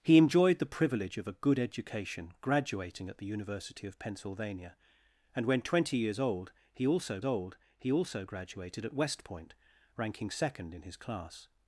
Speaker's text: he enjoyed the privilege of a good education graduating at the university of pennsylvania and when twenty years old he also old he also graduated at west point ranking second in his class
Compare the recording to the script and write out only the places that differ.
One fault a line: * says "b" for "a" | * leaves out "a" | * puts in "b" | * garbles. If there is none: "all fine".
all fine